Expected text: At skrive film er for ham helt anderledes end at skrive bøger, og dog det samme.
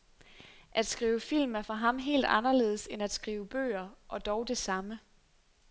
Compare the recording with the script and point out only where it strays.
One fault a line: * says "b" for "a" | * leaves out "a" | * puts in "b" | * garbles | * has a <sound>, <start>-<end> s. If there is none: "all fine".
all fine